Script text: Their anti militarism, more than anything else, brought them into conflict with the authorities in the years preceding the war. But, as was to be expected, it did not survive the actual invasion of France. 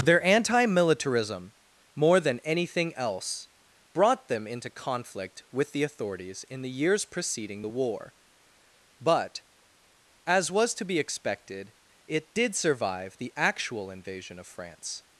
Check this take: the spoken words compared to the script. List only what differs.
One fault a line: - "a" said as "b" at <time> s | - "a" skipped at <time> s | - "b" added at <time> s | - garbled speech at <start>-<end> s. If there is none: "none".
- "not" skipped at 12.5 s